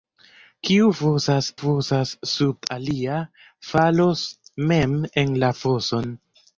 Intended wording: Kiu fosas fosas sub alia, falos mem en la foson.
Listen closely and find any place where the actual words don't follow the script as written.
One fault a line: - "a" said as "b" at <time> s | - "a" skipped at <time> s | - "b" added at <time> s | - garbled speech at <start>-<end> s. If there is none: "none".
none